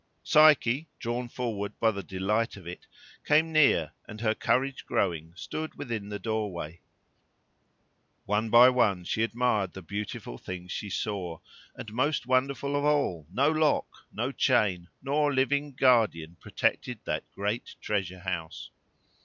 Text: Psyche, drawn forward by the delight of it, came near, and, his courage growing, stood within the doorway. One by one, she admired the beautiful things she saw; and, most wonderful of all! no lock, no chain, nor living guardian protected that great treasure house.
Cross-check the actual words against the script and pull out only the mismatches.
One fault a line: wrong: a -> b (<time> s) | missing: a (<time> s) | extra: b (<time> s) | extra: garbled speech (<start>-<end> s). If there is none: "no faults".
wrong: his -> her (4.2 s)